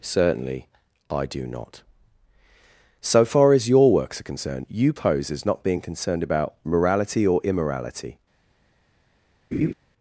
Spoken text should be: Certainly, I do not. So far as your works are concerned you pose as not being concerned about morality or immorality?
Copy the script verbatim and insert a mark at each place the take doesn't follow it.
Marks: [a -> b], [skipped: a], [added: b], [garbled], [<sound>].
Certainly, I do not. So far as your works are concerned you pose as not being concerned about morality or immorality? [laugh]